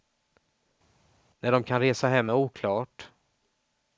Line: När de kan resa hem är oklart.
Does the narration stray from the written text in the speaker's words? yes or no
no